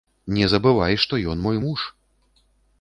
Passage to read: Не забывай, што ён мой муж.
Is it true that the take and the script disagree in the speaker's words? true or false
false